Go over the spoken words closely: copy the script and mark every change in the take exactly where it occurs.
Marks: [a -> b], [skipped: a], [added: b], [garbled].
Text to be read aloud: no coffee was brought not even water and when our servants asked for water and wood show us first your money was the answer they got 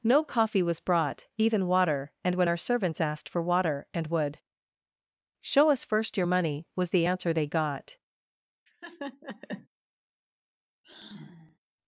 no coffee was brought [skipped: not] even water and when our servants asked for water and wood show us first your money was the answer they got